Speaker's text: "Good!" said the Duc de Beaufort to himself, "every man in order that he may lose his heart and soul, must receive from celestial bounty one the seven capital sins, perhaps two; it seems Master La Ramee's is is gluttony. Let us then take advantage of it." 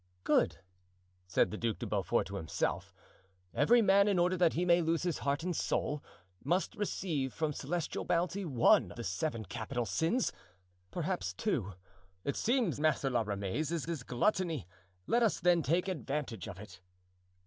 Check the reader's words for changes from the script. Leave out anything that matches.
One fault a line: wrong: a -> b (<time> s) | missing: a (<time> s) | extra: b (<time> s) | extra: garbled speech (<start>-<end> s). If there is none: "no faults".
no faults